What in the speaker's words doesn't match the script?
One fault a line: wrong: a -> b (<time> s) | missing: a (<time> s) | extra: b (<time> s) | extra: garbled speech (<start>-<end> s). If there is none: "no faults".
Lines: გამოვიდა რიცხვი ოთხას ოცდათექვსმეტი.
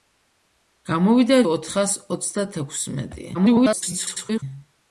missing: რიცხვი (1.4 s)
extra: garbled speech (3.3-4.4 s)